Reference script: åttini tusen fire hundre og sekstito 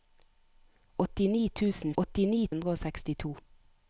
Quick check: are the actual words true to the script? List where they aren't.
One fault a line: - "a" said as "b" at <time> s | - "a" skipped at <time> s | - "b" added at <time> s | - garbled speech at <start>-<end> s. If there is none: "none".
- "fire" said as "åttini" at 2.0 s